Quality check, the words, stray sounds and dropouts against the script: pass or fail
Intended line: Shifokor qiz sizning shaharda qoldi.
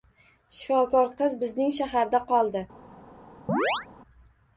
fail